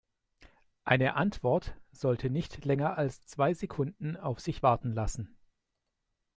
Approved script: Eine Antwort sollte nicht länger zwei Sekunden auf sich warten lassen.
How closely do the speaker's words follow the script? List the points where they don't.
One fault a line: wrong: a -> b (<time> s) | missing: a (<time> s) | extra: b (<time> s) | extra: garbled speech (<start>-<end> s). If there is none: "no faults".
extra: als (3.0 s)